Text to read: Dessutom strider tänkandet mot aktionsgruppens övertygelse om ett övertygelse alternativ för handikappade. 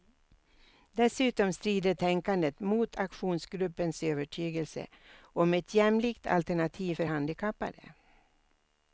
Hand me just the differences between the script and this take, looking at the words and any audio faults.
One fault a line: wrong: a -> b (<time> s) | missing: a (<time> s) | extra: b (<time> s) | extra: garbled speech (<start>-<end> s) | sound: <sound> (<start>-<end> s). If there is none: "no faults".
wrong: övertygelse -> jämlikt (5.7 s)